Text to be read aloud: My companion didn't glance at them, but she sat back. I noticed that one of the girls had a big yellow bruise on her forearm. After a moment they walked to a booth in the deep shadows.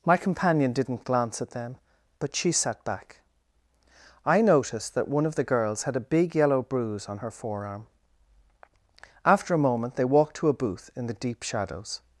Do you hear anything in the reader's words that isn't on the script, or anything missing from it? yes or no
no